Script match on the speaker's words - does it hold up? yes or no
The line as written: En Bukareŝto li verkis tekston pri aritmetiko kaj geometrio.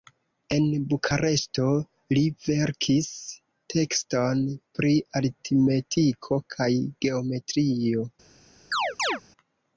yes